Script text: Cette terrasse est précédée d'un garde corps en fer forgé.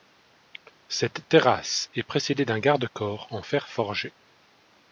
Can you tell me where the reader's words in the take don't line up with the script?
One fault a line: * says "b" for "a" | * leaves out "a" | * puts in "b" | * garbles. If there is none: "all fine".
all fine